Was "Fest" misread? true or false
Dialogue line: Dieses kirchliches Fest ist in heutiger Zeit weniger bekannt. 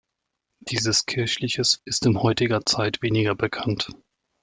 true